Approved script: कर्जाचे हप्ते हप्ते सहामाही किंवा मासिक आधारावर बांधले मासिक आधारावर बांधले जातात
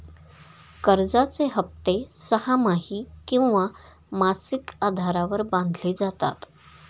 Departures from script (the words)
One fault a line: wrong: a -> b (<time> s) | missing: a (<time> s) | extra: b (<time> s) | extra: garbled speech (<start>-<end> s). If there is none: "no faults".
missing: हप्ते (1.9 s)
missing: मासिक आधारावर बांधले (5.9 s)